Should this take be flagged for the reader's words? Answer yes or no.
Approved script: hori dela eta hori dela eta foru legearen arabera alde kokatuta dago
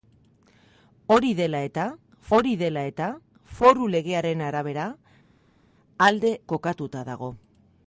no